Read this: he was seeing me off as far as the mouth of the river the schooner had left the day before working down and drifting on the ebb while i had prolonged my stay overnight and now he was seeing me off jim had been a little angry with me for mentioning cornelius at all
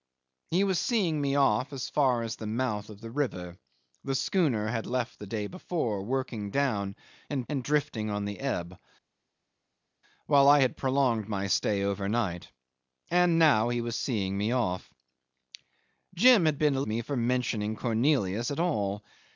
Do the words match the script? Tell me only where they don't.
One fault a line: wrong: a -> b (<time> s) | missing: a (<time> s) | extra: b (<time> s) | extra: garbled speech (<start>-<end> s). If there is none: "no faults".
extra: and (7.5 s)
missing: little angry with (16.8 s)